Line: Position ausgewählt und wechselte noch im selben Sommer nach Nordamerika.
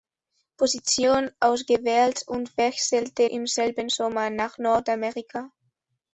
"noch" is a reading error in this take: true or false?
true